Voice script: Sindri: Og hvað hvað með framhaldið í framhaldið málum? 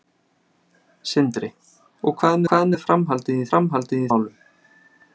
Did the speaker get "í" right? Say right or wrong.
right